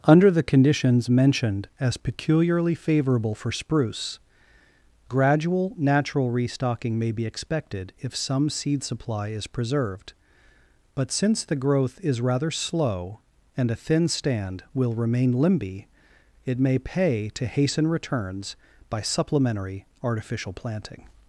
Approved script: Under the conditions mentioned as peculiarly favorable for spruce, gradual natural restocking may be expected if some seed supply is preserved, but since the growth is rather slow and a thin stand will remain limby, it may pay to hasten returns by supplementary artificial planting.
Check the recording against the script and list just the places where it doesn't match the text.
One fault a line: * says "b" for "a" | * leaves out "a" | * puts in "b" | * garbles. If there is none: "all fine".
all fine